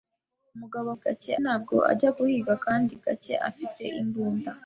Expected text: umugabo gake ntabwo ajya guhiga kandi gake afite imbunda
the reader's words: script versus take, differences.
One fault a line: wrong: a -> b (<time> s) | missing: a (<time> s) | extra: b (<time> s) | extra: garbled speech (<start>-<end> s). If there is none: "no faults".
no faults